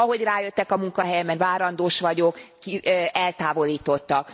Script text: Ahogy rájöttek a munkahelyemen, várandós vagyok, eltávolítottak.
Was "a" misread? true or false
false